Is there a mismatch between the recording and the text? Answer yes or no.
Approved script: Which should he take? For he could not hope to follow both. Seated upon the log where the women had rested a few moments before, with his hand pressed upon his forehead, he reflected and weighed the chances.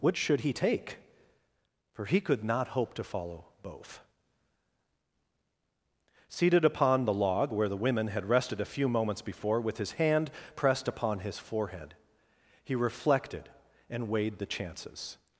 no